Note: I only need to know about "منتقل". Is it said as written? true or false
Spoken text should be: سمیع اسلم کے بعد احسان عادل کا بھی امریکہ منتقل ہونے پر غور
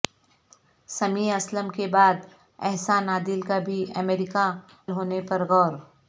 false